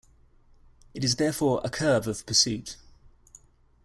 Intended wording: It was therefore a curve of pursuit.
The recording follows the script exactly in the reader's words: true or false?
false